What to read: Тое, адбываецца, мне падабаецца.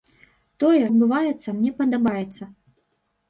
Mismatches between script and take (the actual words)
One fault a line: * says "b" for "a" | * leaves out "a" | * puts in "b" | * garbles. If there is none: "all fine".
all fine